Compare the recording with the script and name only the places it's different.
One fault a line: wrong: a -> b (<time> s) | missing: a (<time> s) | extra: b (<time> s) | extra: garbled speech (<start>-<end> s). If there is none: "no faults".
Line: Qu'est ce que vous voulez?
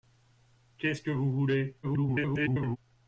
extra: garbled speech (1.8-2.8 s)